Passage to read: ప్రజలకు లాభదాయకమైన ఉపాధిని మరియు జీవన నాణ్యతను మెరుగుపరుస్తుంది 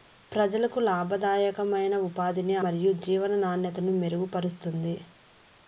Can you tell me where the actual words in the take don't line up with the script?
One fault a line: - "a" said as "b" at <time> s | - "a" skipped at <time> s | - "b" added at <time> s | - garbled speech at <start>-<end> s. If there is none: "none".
none